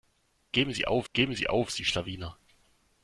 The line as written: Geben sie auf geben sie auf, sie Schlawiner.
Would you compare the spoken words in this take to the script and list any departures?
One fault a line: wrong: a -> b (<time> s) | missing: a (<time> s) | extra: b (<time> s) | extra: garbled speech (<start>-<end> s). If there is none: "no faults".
no faults